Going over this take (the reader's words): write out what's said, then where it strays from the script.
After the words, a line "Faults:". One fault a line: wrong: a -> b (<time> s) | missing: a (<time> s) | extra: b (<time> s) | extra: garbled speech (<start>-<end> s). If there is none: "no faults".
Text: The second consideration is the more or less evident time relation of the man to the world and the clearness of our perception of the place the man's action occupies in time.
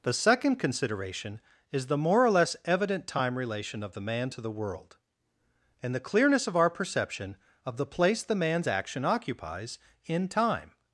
The second consideration is the more or less evident time relation of the man to the world and the clearness of our perception of the place the man's action occupies in time.
Faults:
no faults